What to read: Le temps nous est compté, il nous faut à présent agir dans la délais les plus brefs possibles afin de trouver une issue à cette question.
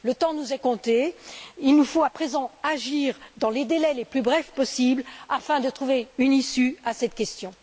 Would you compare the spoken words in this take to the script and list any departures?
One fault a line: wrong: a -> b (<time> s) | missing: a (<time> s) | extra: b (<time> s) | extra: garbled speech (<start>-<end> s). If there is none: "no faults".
wrong: la -> les (3.5 s)